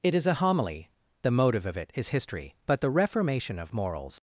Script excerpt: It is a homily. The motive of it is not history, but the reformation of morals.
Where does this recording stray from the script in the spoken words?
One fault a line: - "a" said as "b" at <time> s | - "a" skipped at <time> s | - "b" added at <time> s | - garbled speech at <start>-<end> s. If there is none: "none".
- "not" skipped at 2.1 s